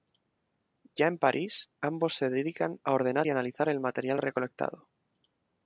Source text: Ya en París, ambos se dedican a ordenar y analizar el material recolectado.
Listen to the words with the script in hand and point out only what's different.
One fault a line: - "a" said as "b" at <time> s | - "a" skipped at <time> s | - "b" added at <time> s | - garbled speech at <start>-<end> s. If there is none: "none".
none